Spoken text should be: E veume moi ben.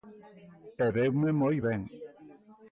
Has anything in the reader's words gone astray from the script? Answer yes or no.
no